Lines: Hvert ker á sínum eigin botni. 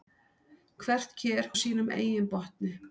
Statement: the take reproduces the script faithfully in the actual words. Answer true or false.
true